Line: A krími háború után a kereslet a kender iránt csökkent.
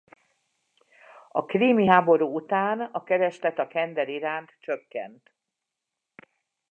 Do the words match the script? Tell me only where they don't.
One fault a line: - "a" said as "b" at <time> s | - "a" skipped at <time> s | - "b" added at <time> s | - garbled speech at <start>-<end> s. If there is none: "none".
none